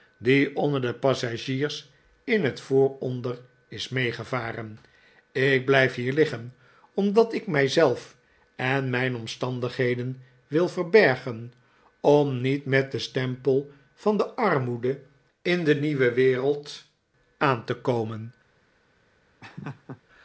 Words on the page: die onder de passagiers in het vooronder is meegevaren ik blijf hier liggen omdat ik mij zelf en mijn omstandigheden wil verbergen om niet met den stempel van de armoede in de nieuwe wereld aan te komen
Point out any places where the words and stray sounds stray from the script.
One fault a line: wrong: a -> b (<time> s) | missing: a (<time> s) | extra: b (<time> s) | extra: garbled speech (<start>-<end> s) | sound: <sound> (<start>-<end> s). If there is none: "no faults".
sound: laugh (19.4-20.0 s)